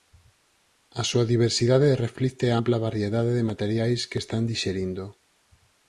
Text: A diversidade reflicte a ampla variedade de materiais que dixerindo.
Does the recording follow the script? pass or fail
fail